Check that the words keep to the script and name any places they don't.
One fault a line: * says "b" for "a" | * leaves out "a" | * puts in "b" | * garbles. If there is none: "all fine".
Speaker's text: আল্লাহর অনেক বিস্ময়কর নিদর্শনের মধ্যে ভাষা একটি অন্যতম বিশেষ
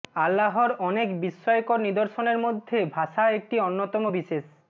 all fine